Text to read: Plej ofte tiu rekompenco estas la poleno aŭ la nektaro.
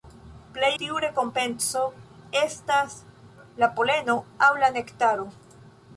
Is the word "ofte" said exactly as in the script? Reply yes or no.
no